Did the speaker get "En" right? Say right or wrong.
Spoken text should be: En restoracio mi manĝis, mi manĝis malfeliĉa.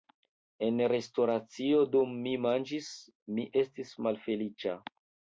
right